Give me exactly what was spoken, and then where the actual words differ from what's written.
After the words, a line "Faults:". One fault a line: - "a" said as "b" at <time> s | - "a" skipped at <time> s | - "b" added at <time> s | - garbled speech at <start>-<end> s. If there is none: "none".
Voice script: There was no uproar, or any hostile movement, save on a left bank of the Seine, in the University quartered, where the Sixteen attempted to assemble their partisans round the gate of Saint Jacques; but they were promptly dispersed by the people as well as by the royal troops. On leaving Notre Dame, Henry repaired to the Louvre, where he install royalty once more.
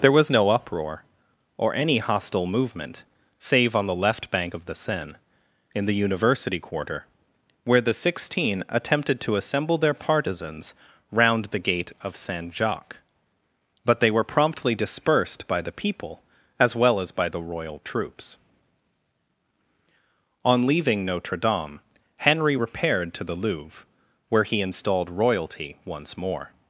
There was no uproar, or any hostile movement, save on the left bank of the Seine, in the University quarter, where the Sixteen attempted to assemble their partisans round the gate of Saint Jacques; but they were promptly dispersed by the people as well as by the royal troops. On leaving Notre Dame, Henry repaired to the Louvre, where he installed royalty once more.
Faults:
- "a" said as "the" at 3.9 s
- "quartered" said as "quarter" at 6.6 s
- "install" said as "installed" at 24.6 s